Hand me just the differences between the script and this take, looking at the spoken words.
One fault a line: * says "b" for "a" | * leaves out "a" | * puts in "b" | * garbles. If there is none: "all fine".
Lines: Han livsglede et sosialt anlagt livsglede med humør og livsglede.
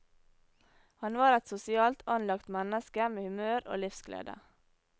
* says "var" for "livsglede"
* says "menneske" for "livsglede"